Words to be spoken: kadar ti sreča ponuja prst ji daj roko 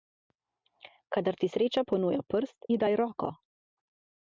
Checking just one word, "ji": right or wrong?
right